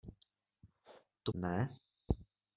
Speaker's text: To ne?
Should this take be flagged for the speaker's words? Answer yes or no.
no